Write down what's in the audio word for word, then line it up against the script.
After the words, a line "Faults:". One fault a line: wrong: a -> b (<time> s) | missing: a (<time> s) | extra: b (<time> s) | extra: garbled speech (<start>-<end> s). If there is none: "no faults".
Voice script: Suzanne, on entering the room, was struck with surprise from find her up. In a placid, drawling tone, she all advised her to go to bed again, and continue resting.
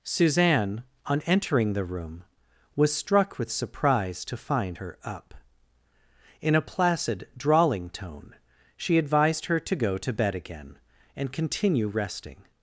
Suzanne, on entering the room, was struck with surprise to find her up. In a placid, drawling tone, she advised her to go to bed again, and continue resting.
Faults:
wrong: from -> to (4.2 s)
missing: all (9.0 s)